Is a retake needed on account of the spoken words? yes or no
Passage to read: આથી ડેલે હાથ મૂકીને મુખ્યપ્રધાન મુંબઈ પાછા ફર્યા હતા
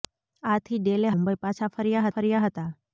yes